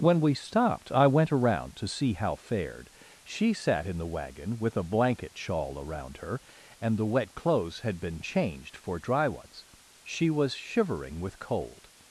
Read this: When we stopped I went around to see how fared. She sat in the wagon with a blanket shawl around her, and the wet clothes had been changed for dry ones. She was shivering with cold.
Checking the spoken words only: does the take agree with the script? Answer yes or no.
yes